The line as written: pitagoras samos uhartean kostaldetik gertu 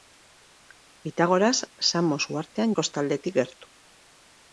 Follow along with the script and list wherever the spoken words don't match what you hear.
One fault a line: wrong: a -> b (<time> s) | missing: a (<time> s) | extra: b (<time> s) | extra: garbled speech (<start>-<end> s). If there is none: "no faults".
no faults